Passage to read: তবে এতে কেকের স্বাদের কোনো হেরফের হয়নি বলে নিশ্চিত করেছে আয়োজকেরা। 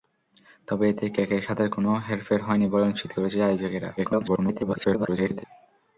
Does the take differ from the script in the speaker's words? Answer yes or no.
yes